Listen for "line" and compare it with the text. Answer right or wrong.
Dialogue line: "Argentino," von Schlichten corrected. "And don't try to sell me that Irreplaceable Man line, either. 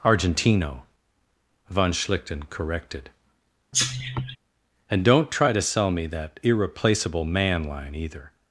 right